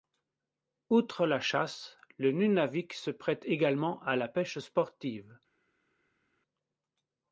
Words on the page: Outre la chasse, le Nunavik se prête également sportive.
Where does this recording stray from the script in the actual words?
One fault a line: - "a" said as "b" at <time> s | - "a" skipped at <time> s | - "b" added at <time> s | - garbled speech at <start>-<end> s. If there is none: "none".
- "à la pêche" added at 4.0 s